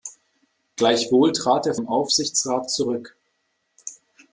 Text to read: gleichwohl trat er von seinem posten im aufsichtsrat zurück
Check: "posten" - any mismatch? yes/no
yes